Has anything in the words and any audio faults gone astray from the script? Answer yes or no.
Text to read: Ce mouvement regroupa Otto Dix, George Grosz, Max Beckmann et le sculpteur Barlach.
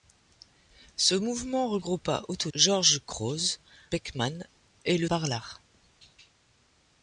yes